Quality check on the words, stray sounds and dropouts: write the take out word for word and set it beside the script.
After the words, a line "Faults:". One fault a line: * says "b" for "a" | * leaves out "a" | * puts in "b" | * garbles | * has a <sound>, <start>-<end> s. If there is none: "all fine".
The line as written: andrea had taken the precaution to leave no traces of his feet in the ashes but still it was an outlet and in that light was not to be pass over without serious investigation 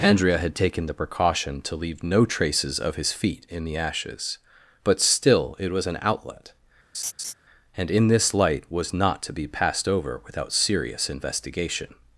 andrea had taken the precaution to leave no traces of his feet in the ashes but still it was an outlet and in this light was not to be passed over without serious investigation
Faults:
* has a laugh, 6.9-7.3 s
* says "this" for "that"
* says "passed" for "pass"